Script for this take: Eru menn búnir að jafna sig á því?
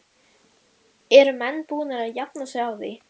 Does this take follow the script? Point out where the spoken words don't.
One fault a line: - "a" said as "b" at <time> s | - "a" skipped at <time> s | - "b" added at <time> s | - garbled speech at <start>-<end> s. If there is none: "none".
none